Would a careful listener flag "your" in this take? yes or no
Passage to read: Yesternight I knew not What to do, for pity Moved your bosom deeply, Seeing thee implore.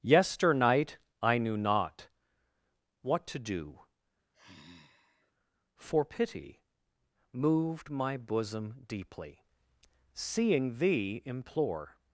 yes